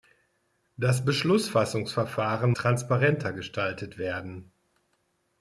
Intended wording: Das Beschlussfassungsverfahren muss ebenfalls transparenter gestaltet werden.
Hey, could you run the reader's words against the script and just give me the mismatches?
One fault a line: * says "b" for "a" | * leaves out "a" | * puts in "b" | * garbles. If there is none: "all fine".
* leaves out "muss ebenfalls"